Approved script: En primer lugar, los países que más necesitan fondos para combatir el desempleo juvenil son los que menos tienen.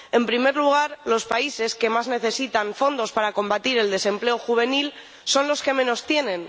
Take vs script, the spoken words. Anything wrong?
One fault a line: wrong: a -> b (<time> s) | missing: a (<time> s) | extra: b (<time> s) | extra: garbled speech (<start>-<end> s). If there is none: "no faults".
no faults